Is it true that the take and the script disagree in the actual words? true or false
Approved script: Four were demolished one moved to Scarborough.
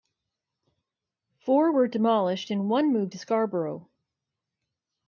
true